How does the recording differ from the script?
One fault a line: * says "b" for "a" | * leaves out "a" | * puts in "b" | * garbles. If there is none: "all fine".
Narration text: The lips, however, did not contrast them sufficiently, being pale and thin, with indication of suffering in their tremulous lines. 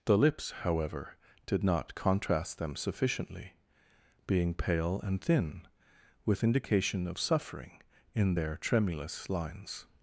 all fine